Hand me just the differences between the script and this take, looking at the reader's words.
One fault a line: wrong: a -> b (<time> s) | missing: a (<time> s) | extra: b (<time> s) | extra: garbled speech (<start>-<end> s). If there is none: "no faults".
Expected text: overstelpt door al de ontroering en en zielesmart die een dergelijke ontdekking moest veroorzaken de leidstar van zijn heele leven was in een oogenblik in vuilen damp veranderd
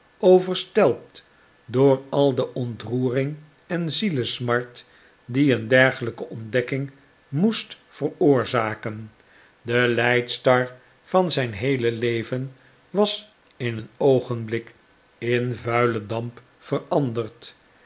missing: en (3.9 s)